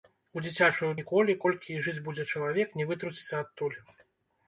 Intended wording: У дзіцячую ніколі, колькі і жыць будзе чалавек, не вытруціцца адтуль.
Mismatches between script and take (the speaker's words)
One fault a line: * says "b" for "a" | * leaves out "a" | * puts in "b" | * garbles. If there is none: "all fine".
all fine